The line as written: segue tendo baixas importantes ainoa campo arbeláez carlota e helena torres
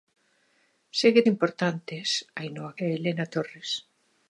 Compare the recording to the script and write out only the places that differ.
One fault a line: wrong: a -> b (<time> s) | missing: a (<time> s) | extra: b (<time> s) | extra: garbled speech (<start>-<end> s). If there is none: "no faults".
missing: tendo baixas (1.2 s)
missing: campo arbeláez carlota (2.7 s)